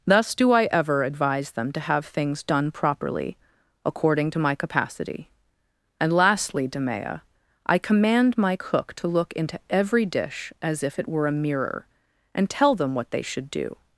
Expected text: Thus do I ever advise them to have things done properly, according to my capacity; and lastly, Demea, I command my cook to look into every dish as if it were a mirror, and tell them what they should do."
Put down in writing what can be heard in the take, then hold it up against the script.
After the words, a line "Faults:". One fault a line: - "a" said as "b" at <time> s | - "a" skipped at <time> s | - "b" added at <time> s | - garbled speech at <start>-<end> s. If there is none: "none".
Thus do I ever advise them to have things done properly, according to my capacity; and lastly, Demea, I command my cook to look into every dish as if it were a mirror, and tell them what they should do."
Faults:
none